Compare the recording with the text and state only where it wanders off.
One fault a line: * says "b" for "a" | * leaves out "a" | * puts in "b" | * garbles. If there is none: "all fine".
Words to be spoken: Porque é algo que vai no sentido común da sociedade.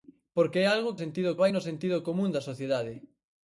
* says "sentido" for "que"